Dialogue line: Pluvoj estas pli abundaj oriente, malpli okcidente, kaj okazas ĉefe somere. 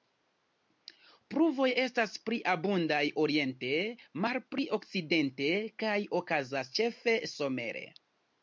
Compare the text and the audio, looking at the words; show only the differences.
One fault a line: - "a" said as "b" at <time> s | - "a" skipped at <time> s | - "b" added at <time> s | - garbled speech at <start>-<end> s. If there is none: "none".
none